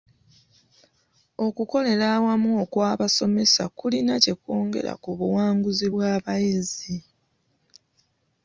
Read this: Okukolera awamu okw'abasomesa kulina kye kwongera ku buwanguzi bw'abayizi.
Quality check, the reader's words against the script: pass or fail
pass